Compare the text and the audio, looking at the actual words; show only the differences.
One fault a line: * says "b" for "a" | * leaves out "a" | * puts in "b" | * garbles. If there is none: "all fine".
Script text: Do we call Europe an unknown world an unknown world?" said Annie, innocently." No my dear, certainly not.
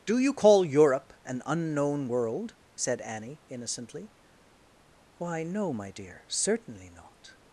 * says "you" for "we"
* leaves out "an unknown world"
* puts in "Why"